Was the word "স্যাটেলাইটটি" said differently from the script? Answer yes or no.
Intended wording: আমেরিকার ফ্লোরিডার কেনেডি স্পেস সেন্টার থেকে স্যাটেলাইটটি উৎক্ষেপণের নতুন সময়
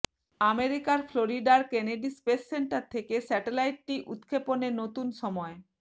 no